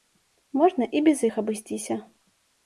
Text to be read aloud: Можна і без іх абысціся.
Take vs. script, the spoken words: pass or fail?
pass